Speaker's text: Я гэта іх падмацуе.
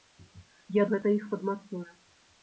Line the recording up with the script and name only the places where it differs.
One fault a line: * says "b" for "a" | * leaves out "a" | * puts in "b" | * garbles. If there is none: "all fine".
all fine